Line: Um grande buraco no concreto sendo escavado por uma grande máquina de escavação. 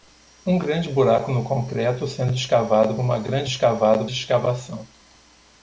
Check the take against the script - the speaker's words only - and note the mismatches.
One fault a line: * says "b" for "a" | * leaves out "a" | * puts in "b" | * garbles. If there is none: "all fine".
* leaves out "por"
* says "escavado" for "máquina"